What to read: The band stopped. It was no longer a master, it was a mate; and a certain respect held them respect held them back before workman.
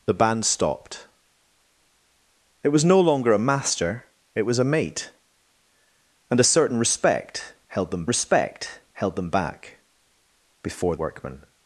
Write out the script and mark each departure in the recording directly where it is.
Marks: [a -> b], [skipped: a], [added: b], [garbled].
The band stopped. It was no longer a master, it was a mate; and a certain respect held them respect held them back before workman.